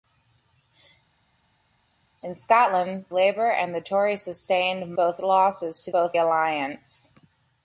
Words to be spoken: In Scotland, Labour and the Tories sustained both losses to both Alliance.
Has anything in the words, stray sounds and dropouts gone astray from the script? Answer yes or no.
no